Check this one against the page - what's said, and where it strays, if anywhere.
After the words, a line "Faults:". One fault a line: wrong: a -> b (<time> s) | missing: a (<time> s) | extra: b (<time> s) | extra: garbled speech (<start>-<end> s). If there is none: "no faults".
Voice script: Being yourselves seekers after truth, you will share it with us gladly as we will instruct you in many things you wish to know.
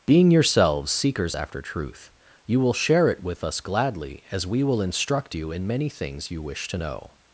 Being yourselves seekers after truth, you will share it with us gladly as we will instruct you in many things you wish to know.
Faults:
no faults